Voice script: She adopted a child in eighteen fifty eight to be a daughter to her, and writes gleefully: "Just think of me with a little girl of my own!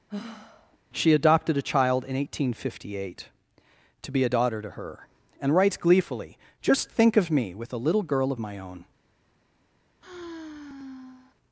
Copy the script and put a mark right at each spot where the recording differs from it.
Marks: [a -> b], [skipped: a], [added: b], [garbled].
She adopted a child in eighteen fifty eight to be a daughter to her, and writes gleefully: "Just think of me with a little girl of my own!